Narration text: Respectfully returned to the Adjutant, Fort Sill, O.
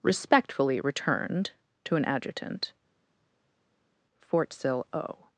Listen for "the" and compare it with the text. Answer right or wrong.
wrong